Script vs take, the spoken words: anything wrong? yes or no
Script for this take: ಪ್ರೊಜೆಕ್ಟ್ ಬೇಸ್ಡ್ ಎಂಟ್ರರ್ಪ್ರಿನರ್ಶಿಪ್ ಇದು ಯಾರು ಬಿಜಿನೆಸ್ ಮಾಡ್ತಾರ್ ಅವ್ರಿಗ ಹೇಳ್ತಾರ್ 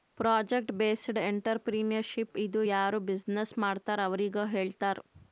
no